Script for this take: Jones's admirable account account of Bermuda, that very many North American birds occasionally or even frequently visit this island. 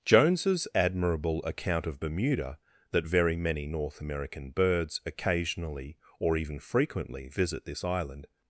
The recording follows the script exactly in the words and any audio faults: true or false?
false